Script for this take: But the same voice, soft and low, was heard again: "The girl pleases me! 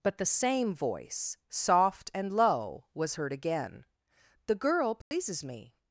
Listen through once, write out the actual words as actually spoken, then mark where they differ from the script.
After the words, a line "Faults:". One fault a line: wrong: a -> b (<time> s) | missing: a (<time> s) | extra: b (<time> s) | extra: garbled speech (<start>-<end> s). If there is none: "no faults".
But the same voice, soft and low, was heard again: "The girl pleases me!
Faults:
no faults